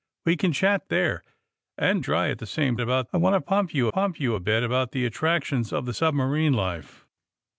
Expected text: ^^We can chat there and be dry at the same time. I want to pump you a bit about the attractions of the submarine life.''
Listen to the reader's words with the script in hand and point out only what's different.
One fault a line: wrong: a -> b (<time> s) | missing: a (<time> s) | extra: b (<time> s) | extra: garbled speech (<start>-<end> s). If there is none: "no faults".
missing: be (2.0 s)
wrong: time -> about (2.8 s)
extra: pump you (3.9 s)